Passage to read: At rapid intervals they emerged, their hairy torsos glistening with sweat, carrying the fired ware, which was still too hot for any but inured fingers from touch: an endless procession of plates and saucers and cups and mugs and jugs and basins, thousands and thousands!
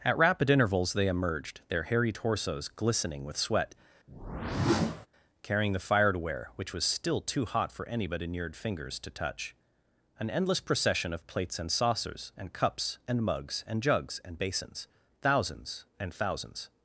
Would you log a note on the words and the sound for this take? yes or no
yes